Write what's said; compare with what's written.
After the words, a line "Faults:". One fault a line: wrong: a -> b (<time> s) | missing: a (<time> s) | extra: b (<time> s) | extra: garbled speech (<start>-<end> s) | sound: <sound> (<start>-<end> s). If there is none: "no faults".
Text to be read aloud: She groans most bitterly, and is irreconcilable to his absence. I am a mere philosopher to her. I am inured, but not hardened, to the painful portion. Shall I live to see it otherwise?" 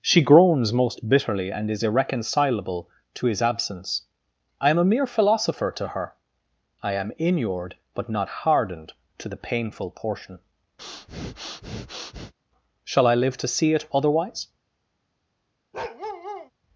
She groans most bitterly, and is irreconcilable to his absence. I am a mere philosopher to her. I am inured, but not hardened, to the painful portion. Shall I live to see it otherwise?"
Faults:
sound: breath (10.8-12.3 s)
sound: bark (15.7-16.5 s)